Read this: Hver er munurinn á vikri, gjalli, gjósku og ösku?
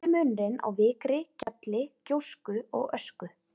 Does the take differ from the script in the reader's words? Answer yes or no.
no